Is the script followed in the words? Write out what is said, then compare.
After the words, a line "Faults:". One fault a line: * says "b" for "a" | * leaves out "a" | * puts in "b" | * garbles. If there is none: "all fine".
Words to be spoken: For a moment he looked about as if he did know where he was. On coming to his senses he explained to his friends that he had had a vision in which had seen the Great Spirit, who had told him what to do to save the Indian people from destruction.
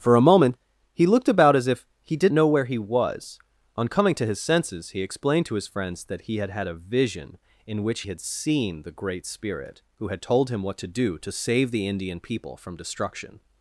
For a moment he looked about as if he did know where he was. On coming to his senses he explained to his friends that he had had a vision in which had seen the Great Spirit, who had told him what to do to save the Indian people from destruction.
Faults:
all fine